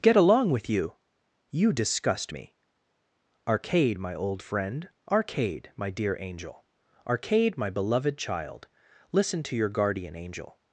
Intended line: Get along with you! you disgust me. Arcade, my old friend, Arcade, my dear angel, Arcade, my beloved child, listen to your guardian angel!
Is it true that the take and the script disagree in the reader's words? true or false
false